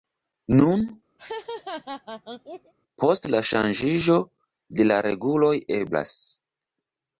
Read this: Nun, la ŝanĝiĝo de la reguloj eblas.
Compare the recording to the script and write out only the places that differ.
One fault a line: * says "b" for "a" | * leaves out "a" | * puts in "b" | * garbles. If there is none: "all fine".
* puts in "post"